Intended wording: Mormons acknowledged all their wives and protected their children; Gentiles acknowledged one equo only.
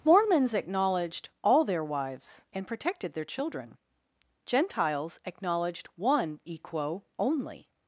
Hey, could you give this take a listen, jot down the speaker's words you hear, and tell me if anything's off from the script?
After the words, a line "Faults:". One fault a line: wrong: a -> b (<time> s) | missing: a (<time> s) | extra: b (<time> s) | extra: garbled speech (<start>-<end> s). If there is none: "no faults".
Mormons acknowledged all their wives and protected their children; Gentiles acknowledged one equo only.
Faults:
no faults